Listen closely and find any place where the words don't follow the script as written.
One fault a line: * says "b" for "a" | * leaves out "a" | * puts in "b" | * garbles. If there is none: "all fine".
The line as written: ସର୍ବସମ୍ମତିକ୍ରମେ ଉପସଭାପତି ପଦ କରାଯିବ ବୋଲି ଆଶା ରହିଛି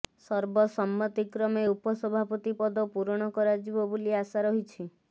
* puts in "ପୂରଣ"